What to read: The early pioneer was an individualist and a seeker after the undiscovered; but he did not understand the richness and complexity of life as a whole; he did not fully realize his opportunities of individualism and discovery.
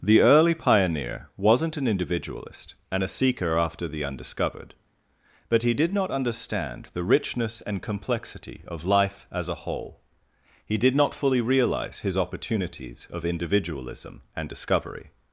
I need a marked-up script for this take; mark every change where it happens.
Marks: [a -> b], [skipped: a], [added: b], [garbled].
The early pioneer [was -> wasn't] an individualist and a seeker after the undiscovered; but he did not understand the richness and complexity of life as a whole; he did not fully realize his opportunities of individualism and discovery.